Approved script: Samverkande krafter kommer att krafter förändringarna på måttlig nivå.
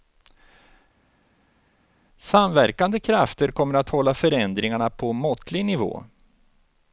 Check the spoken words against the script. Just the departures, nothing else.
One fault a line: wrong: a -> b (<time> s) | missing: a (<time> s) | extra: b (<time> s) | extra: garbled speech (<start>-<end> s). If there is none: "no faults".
wrong: krafter -> hålla (3.9 s)